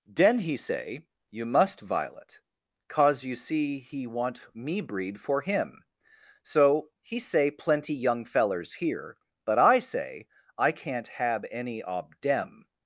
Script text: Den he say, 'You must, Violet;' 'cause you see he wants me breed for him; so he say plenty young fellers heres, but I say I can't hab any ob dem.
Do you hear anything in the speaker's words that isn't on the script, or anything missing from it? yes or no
yes